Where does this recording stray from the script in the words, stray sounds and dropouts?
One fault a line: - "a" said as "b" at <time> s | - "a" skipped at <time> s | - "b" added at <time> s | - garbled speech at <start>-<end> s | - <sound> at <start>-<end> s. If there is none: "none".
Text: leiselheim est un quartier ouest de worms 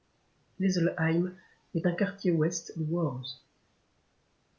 none